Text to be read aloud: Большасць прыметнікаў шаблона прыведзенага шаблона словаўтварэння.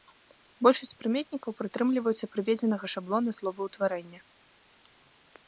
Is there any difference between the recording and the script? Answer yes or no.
yes